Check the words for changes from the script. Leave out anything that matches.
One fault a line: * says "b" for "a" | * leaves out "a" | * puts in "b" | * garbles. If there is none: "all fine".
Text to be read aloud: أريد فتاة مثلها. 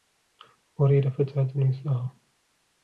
all fine